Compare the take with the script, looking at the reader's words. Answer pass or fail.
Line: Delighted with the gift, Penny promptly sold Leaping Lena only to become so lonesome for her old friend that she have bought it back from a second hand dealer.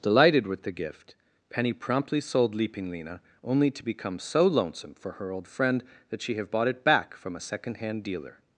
pass